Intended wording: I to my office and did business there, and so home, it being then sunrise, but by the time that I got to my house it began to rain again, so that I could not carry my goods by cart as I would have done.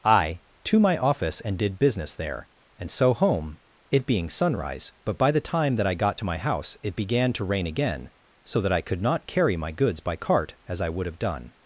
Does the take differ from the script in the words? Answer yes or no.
yes